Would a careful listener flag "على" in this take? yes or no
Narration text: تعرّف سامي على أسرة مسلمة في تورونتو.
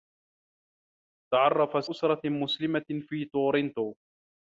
yes